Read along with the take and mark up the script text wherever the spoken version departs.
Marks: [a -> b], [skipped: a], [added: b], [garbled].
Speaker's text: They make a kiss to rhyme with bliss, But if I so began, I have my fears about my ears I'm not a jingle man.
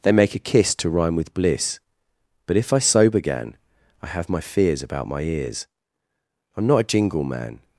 They make a kiss to rhyme with bliss, But if I so began, I have my fears about my ears I'm not a jingle man.